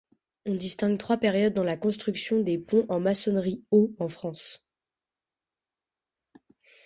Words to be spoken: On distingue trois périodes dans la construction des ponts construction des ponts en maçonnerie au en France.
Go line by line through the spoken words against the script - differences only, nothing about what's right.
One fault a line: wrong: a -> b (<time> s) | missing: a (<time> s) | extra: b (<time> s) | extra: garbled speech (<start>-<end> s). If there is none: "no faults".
missing: construction des ponts (2.9 s)